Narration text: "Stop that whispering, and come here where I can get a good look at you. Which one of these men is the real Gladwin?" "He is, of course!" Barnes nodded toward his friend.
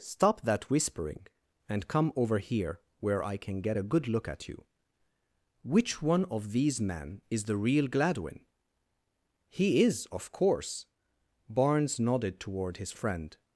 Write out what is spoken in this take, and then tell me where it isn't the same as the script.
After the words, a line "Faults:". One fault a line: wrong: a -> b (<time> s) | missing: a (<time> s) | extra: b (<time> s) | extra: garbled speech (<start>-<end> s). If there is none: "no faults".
"Stop that whispering, and come over here where I can get a good look at you. Which one of these men is the real Gladwin?" "He is, of course!" Barnes nodded toward his friend.
Faults:
extra: over (2.1 s)